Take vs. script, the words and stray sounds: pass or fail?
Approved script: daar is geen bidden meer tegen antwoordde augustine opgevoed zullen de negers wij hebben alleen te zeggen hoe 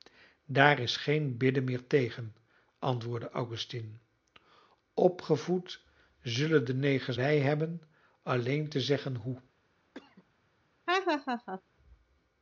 fail